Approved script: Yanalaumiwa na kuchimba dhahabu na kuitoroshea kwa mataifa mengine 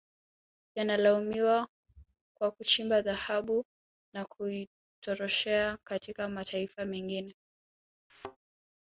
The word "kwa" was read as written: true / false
false